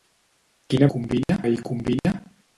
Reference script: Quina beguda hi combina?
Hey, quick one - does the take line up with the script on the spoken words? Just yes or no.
no